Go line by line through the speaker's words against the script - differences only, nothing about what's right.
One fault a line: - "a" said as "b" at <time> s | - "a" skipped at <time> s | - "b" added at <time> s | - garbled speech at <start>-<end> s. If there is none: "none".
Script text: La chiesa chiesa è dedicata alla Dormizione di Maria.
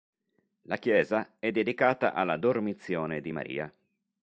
- "chiesa" skipped at 1.4 s